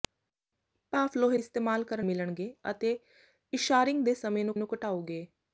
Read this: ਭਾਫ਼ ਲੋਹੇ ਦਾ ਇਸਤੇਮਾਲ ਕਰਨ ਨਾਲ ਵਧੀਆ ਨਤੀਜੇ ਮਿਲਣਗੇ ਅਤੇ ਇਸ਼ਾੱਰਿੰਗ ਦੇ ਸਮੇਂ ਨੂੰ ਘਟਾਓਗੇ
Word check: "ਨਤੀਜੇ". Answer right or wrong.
wrong